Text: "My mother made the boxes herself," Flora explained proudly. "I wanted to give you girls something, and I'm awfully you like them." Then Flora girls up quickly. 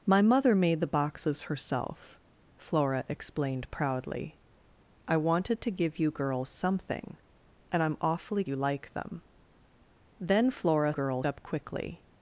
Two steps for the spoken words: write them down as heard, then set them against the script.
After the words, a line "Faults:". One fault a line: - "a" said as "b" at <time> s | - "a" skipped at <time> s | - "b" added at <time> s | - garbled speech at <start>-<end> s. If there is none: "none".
"My mother made the boxes herself," Flora explained proudly. "I wanted to give you girls something, and I'm awfully you like them." Then Flora girls up quickly.
Faults:
none